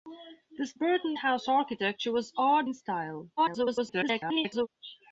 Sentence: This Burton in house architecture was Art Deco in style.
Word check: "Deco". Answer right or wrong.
wrong